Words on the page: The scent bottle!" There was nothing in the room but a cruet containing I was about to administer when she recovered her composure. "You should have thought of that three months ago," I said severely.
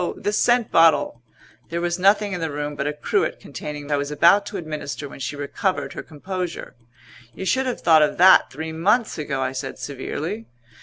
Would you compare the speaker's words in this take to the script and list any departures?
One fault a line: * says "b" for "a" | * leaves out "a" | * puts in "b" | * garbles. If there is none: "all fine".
all fine